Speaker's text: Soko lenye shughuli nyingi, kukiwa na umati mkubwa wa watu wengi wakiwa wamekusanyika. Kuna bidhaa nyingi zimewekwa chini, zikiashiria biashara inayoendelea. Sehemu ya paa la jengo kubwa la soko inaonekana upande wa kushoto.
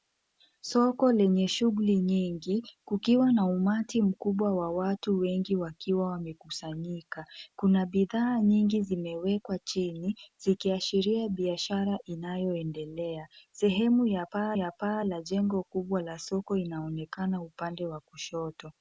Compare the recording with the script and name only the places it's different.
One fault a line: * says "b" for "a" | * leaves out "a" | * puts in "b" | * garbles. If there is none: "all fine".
* puts in "ya paa"